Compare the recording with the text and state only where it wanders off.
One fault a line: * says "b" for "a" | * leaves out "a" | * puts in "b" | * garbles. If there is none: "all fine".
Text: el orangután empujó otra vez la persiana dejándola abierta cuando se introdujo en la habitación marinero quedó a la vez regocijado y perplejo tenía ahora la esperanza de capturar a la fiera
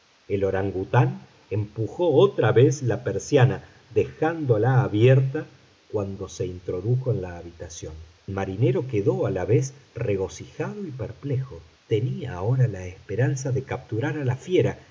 all fine